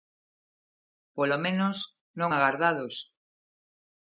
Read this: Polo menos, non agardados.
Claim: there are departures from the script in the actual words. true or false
false